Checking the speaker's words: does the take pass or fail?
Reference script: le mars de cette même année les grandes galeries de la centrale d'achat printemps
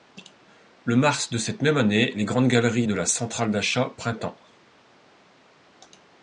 pass